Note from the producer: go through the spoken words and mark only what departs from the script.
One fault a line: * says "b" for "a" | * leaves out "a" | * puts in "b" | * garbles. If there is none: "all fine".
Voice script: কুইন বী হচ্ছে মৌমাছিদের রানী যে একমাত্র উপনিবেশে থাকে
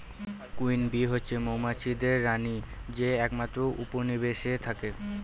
all fine